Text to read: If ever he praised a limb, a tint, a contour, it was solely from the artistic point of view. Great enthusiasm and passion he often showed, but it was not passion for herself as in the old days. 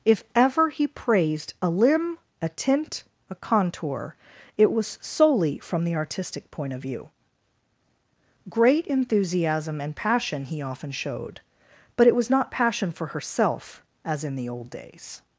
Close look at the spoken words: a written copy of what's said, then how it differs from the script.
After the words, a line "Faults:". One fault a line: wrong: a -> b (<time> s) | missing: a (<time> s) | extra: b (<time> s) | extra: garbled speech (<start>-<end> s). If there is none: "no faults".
If ever he praised a limb, a tint, a contour, it was solely from the artistic point of view. Great enthusiasm and passion he often showed, but it was not passion for herself as in the old days.
Faults:
no faults